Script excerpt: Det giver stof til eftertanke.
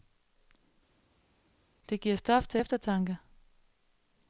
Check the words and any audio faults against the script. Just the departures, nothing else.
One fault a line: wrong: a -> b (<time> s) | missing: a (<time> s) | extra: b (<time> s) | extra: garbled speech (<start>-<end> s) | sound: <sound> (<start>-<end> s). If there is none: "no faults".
no faults